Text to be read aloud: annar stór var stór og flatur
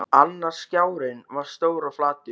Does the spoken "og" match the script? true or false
true